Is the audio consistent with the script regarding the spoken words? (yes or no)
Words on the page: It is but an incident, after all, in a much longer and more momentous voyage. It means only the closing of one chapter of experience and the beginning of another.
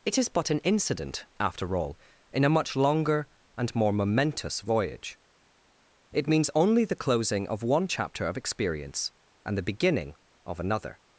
yes